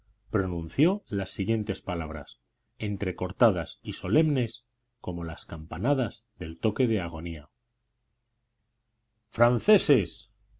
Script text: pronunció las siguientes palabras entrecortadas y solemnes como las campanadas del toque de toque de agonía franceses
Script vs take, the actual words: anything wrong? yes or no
yes